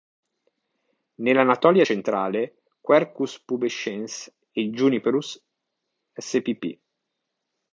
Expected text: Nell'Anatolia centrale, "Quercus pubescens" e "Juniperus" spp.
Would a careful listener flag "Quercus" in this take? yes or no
no